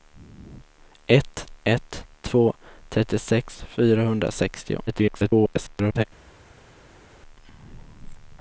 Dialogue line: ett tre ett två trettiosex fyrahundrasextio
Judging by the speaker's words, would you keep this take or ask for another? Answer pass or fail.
fail